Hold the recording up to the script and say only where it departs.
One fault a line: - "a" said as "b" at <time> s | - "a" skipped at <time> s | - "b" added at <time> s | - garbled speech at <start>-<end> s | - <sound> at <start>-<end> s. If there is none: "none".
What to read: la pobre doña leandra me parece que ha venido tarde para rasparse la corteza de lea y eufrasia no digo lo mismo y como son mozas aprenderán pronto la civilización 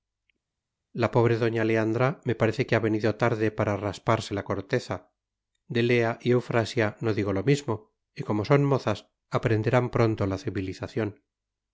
none